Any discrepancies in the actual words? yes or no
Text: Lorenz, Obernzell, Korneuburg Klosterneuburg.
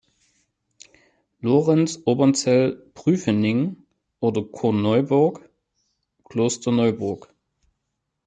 yes